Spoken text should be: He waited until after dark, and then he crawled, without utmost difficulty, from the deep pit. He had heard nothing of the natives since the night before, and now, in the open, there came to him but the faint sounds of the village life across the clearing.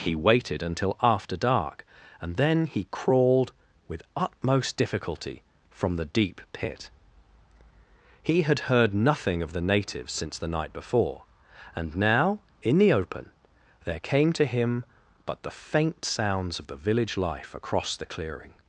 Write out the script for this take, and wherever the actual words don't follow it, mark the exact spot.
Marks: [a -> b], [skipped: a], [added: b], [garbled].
He waited until after dark, and then he crawled, [without -> with] utmost difficulty, from the deep pit. He had heard nothing of the natives since the night before, and now, in the open, there came to him but the faint sounds of the village life across the clearing.